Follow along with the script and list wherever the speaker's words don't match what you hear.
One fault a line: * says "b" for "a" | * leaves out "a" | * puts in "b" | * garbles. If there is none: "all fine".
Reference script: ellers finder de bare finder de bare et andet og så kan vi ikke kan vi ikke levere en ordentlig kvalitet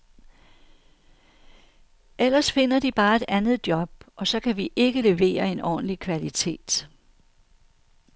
* leaves out "finder de bare"
* puts in "job"
* leaves out "kan vi ikke"